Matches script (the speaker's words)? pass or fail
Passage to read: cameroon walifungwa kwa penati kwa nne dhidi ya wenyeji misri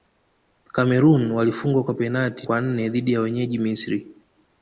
pass